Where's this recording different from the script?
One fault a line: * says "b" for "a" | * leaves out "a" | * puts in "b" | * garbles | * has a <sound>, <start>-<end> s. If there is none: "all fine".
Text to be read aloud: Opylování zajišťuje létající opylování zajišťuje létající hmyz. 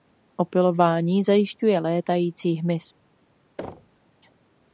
* leaves out "opylování zajišťuje létající"
* has a thud, 3.6-4.0 s